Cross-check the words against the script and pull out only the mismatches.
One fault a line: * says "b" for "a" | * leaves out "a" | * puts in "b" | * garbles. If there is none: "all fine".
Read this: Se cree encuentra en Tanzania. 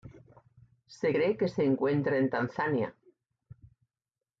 * puts in "que se"